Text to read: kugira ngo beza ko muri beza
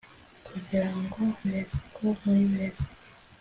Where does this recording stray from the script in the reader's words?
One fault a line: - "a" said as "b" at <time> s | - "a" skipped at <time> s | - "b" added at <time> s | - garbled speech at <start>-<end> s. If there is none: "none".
none